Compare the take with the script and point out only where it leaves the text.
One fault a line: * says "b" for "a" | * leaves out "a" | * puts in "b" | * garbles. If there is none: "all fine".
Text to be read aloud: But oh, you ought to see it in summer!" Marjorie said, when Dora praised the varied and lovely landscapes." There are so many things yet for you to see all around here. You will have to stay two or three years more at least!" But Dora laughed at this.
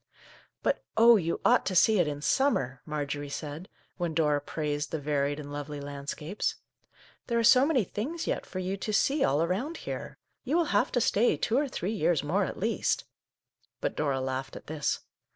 all fine